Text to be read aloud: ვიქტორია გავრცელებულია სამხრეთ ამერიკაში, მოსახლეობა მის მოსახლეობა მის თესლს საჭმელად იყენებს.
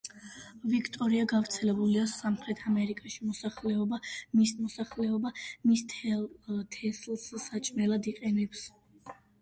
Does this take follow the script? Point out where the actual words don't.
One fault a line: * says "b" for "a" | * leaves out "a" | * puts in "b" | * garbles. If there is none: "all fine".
all fine